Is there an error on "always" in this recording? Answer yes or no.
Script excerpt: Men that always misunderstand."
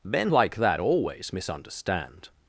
no